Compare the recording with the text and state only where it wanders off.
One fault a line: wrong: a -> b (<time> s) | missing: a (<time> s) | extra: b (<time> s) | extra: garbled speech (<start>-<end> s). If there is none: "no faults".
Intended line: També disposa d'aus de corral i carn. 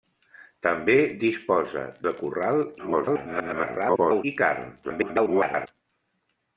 missing: d'aus (1.8 s)
extra: garbled speech (2.8-4.2 s)
extra: garbled speech (4.8-5.7 s)